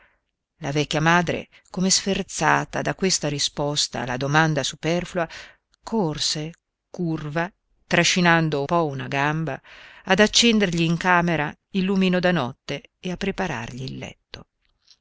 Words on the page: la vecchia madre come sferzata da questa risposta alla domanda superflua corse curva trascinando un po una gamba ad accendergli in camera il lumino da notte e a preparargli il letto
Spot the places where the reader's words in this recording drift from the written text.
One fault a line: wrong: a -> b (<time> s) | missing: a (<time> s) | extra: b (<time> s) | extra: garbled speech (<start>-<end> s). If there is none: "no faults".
missing: un (8.6 s)